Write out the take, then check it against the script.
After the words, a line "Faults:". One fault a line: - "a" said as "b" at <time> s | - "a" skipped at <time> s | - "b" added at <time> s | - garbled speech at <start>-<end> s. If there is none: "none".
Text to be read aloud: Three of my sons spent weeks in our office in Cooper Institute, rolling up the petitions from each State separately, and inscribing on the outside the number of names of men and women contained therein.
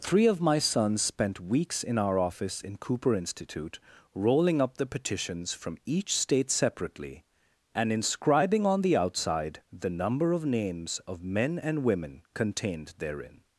Three of my sons spent weeks in our office in Cooper Institute, rolling up the petitions from each State separately, and inscribing on the outside the number of names of men and women contained therein.
Faults:
none